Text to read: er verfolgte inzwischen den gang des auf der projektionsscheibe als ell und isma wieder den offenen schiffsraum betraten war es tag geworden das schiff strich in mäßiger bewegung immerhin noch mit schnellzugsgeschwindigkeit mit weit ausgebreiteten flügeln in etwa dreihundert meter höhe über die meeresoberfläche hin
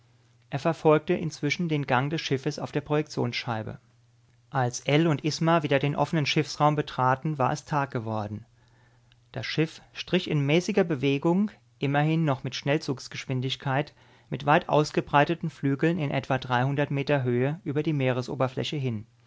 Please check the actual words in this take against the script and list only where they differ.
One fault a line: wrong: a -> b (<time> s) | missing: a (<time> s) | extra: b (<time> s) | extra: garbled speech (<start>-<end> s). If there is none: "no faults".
extra: schiffes (2.2 s)